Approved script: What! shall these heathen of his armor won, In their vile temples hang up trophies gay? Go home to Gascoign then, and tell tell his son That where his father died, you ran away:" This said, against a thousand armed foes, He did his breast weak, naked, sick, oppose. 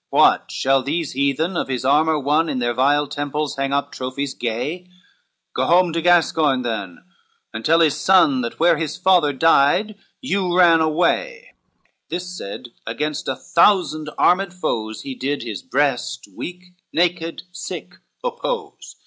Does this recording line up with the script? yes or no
no